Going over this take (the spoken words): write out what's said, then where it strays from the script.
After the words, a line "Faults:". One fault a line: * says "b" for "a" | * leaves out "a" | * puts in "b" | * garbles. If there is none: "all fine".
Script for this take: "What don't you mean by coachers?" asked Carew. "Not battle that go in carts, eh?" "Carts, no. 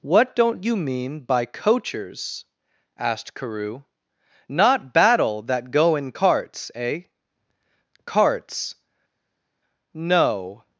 "What don't you mean by coachers?" asked Carew. "Not battle that go in carts, eh?" "Carts, no.
Faults:
all fine